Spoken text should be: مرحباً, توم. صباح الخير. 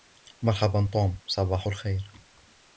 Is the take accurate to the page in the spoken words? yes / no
yes